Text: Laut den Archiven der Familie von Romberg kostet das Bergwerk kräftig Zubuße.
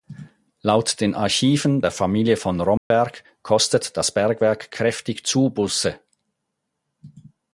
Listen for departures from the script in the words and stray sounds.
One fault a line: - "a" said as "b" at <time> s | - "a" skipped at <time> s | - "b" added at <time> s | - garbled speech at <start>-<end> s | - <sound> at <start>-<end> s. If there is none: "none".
- dropout at 2.8-2.9 s